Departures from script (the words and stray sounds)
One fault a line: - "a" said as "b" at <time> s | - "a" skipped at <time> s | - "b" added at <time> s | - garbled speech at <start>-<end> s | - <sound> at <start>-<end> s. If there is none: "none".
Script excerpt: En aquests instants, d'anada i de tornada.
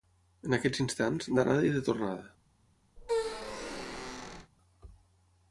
- squeak at 3.0-4.5 s